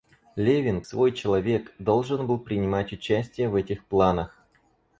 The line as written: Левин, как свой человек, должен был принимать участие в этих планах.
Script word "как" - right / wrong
wrong